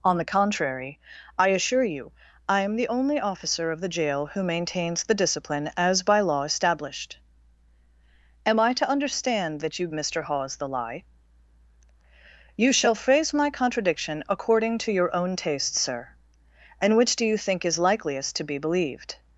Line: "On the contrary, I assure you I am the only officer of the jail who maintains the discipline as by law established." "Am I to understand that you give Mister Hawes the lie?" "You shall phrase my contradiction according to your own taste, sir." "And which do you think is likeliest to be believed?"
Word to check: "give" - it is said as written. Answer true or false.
false